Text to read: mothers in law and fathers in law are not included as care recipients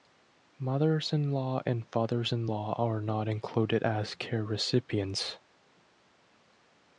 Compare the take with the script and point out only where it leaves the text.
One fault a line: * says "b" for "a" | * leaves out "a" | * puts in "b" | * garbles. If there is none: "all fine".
all fine